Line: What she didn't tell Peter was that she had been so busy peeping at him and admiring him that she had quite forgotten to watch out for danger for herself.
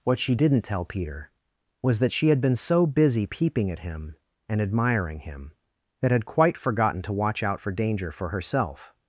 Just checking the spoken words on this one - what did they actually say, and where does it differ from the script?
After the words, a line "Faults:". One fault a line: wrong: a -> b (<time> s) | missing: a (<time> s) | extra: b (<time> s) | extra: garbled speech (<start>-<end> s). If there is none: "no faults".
What she didn't tell Peter was that she had been so busy peeping at him and admiring him that had quite forgotten to watch out for danger for herself.
Faults:
missing: she (6.1 s)